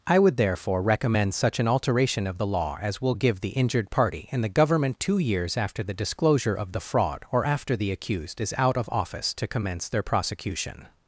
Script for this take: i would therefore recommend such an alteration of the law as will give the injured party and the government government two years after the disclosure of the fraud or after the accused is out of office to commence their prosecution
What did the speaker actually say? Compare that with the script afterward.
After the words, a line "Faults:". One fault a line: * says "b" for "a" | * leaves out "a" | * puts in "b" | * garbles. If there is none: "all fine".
i would therefore recommend such an alteration of the law as will give the injured party and the government two years after the disclosure of the fraud or after the accused is out of office to commence their prosecution
Faults:
* leaves out "government"